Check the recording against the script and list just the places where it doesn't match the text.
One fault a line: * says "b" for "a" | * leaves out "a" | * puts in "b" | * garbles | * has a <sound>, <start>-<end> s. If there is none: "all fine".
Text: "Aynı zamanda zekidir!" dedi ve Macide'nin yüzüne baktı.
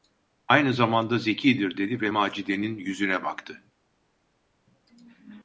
all fine